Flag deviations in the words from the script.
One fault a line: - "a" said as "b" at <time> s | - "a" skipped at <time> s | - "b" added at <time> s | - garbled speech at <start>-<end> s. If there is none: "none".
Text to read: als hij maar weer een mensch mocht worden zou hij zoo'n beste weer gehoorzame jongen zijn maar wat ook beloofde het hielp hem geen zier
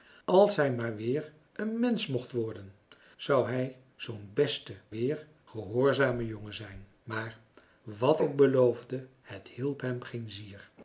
none